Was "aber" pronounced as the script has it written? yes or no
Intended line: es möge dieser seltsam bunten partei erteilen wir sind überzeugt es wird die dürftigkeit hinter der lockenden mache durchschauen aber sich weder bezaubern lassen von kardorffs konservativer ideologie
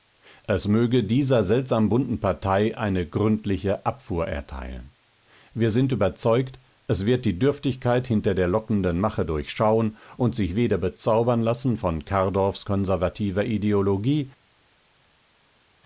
no